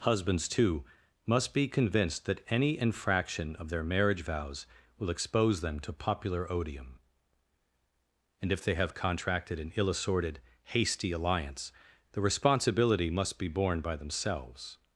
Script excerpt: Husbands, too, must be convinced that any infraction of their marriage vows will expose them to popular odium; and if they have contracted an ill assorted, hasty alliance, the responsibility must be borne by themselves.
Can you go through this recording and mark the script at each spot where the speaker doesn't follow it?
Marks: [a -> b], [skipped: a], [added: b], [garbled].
Husbands, too, must be convinced that any infraction of their marriage vows will expose them to popular odium; and if they have contracted an ill assorted, hasty alliance, the responsibility must be borne by themselves.